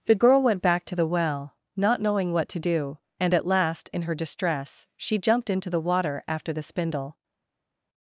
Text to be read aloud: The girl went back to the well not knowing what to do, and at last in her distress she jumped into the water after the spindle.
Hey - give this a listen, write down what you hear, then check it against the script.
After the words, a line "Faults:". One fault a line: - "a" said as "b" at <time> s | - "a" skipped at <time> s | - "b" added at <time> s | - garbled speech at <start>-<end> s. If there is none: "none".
The girl went back to the well not knowing what to do, and at last in her distress she jumped into the water after the spindle.
Faults:
none